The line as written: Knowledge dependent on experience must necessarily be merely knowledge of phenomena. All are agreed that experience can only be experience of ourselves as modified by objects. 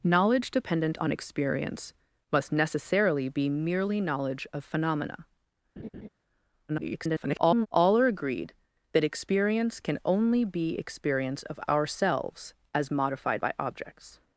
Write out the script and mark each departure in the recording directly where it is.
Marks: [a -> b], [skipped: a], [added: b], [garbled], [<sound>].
Knowledge dependent on experience must necessarily be merely knowledge of phenomena. [laugh] [garbled] All are agreed that experience can only be experience of ourselves as modified by objects.